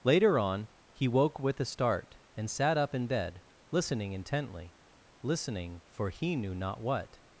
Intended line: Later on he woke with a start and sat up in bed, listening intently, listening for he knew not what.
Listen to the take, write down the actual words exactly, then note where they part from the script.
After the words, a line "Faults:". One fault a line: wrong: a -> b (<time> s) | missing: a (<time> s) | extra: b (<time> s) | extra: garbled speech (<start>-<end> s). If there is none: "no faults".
Later on he woke with a start and sat up in bed, listening intently, listening for he knew not what.
Faults:
no faults